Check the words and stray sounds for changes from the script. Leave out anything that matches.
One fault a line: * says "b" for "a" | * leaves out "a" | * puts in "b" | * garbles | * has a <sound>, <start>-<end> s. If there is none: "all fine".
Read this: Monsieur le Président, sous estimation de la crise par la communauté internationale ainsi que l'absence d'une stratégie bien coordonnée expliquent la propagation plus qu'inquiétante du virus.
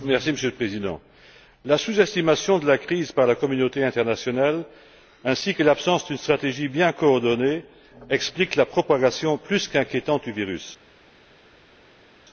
* puts in "la"